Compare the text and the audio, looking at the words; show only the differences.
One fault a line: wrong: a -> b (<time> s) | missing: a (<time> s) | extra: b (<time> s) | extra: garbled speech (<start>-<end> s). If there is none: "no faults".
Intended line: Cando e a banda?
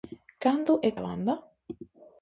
no faults